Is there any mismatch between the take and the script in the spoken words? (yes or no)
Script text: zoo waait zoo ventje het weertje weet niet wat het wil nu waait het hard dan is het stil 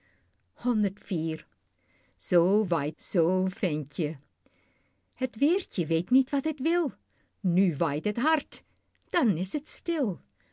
no